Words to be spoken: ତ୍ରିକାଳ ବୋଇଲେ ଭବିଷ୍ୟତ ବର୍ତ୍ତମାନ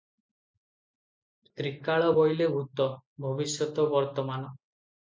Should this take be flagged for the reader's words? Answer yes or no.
yes